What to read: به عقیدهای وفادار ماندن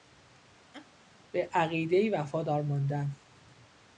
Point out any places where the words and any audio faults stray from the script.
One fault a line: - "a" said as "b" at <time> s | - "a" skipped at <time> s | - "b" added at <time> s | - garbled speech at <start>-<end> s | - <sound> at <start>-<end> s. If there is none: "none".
- laugh at 0.7-0.9 s